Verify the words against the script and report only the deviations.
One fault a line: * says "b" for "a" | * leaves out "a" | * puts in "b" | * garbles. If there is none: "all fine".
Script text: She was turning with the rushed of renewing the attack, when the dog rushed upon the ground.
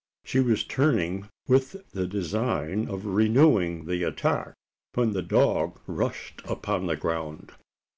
* says "design" for "rushed"